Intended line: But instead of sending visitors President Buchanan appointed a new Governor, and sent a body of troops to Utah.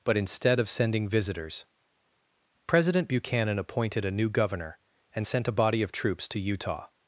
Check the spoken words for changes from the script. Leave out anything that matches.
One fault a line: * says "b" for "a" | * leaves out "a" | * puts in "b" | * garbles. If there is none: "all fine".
all fine